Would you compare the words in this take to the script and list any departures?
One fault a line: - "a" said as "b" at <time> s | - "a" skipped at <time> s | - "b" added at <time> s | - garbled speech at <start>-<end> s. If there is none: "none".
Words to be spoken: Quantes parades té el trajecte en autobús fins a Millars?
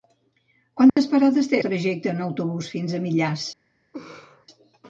- "el" skipped at 1.6 s